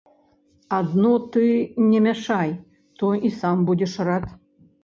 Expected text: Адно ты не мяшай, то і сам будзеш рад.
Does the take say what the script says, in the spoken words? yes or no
yes